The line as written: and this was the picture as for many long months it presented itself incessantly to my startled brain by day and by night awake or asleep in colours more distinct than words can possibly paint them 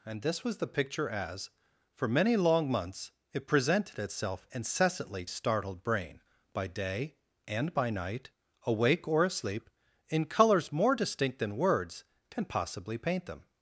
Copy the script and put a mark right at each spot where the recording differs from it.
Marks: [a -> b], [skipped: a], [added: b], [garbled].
and this was the picture as for many long months it presented itself incessantly [skipped: to my] startled brain by day and by night awake or asleep in colours more distinct than words can possibly paint them